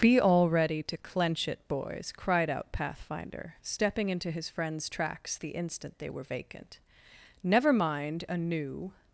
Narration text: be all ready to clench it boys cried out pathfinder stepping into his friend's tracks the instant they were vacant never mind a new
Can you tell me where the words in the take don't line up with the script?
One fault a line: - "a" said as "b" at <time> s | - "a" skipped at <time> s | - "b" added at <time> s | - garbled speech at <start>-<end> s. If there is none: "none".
none